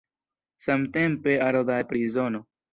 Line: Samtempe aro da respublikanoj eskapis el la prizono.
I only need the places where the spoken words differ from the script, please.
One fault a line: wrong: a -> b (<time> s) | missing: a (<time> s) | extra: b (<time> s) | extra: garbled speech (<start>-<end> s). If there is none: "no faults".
missing: respublikanoj eskapis el (1.8 s)